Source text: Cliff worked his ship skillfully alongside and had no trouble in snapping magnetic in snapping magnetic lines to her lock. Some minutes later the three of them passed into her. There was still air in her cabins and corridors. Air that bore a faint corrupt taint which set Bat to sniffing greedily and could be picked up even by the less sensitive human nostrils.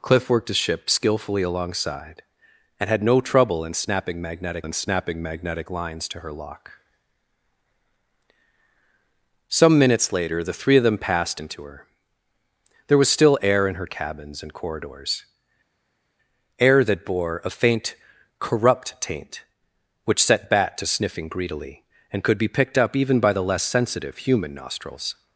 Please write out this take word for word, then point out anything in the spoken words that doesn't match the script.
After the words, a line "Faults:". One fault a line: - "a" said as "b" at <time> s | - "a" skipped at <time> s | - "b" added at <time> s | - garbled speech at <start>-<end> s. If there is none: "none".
Cliff worked his ship skillfully alongside and had no trouble in snapping magnetic in snapping magnetic lines to her lock. Some minutes later the three of them passed into her. There was still air in her cabins and corridors. Air that bore a faint corrupt taint which set Bat to sniffing greedily and could be picked up even by the less sensitive human nostrils.
Faults:
none